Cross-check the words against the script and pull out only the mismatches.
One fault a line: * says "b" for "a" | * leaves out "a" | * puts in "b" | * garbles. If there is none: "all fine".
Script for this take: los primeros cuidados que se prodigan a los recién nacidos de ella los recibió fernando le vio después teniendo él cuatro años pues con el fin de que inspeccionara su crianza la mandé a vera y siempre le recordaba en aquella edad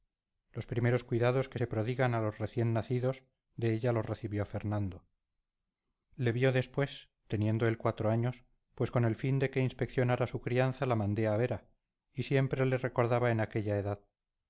all fine